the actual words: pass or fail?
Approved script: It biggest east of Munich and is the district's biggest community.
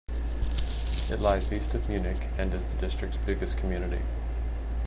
fail